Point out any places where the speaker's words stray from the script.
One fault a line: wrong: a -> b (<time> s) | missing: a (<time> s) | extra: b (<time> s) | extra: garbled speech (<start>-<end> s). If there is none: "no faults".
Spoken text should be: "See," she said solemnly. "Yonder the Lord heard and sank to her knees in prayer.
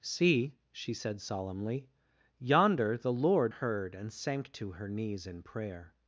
no faults